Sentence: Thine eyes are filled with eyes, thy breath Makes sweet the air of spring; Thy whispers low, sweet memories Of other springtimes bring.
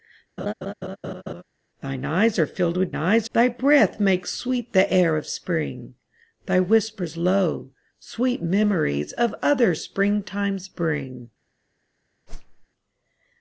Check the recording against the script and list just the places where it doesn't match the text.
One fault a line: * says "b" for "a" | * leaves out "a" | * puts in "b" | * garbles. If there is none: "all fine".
all fine